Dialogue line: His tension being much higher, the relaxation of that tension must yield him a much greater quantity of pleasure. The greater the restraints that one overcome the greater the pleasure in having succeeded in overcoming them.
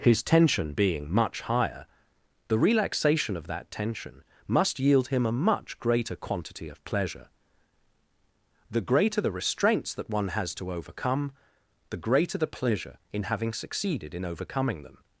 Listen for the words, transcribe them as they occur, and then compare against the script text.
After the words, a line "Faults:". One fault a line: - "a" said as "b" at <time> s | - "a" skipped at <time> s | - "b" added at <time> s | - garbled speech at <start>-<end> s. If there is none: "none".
His tension being much higher, the relaxation of that tension must yield him a much greater quantity of pleasure. The greater the restraints that one has to overcome the greater the pleasure in having succeeded in overcoming them.
Faults:
- "has to" added at 10.3 s